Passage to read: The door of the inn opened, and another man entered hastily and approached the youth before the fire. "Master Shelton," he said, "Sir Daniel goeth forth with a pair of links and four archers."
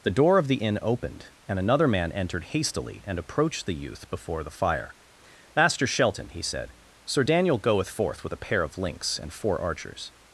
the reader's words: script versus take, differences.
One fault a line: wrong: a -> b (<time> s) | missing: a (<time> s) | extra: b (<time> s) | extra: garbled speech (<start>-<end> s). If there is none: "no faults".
no faults